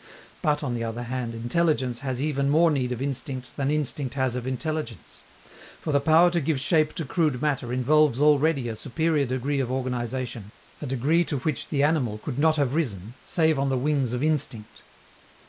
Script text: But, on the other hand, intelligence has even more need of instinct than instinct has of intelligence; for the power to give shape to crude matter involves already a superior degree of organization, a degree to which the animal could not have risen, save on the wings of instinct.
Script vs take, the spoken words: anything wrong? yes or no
no